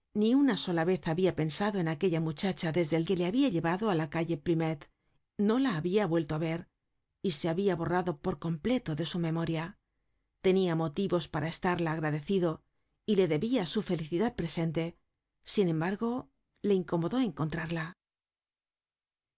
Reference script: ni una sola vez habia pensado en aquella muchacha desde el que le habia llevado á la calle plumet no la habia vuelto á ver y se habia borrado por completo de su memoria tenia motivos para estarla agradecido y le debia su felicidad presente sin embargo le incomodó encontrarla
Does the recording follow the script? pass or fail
pass